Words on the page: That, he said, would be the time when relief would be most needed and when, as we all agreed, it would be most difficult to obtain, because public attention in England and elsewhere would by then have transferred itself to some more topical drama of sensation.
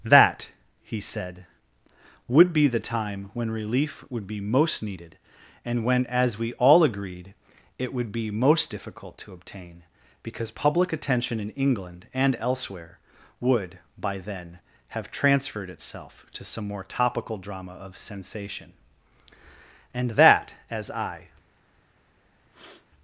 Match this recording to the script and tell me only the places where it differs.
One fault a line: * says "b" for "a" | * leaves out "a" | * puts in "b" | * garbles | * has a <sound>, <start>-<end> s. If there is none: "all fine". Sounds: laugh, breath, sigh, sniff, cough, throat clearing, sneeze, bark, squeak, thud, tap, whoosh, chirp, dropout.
* puts in "And that as I"
* has a sniff, 22.5-22.9 s